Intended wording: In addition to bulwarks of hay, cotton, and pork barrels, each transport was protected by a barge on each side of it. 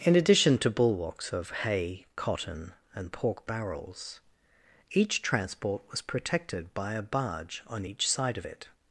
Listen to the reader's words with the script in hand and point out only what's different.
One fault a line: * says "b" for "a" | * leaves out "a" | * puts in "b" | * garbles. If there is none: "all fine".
all fine